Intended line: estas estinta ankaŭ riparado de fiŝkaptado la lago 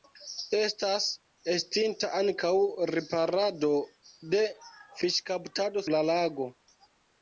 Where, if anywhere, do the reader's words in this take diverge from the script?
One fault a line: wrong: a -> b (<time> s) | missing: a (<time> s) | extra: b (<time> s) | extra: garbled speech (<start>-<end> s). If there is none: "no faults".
no faults